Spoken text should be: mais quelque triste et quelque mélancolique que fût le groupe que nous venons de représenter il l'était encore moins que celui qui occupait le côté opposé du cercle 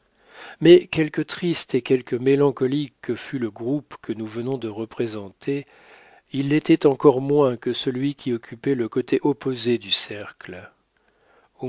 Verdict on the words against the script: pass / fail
pass